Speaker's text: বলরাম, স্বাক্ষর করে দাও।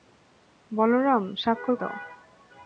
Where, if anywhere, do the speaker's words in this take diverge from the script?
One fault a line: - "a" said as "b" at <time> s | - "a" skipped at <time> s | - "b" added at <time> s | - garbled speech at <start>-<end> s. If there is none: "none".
- "করে" skipped at 1.8 s